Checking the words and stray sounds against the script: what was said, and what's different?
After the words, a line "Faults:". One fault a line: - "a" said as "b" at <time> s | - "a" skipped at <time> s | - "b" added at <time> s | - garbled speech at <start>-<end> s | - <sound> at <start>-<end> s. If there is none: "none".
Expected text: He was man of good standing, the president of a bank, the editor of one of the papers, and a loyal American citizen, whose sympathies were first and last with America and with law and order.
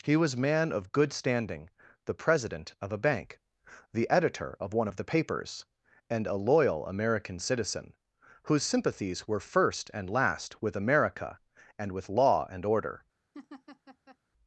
He was man of good standing, the president of a bank, the editor of one of the papers, and a loyal American citizen, whose sympathies were first and last with America and with law and order.
Faults:
- laugh at 13.3-14.2 s